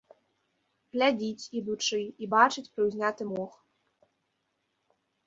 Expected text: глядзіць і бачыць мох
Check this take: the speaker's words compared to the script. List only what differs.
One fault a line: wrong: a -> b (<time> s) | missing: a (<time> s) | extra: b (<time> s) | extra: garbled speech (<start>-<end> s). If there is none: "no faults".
extra: ідучы (1.6 s)
extra: прыўзняты (2.8 s)